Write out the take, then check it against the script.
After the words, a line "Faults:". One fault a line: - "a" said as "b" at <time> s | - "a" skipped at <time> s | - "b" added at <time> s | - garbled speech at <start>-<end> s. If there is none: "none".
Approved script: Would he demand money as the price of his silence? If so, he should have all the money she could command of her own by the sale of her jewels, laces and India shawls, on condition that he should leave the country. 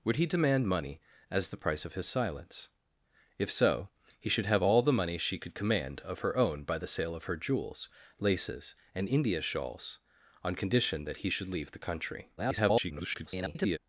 Would he demand money as the price of his silence? If so, he should have all the money she could command of her own by the sale of her jewels, laces and India shawls, on condition that he should leave the country. [garbled]
Faults:
- garbled speech at 12.4-13.8 s